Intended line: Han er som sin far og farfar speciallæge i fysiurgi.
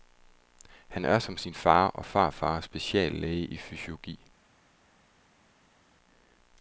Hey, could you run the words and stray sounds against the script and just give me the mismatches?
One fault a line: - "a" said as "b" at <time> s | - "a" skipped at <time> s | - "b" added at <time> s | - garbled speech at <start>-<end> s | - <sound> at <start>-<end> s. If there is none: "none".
none